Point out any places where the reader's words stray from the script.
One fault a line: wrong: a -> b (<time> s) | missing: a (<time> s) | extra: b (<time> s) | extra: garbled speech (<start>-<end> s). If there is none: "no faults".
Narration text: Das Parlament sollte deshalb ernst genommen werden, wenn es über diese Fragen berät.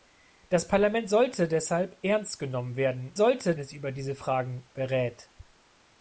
wrong: wenn -> sollte (3.2 s)